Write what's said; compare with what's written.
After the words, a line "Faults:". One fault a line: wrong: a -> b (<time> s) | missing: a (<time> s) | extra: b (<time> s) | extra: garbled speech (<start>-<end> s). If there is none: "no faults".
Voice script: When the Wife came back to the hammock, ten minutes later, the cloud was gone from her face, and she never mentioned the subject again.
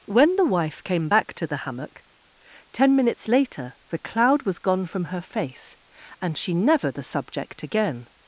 When the Wife came back to the hammock, ten minutes later, the cloud was gone from her face, and she never the subject again.
Faults:
missing: mentioned (6.9 s)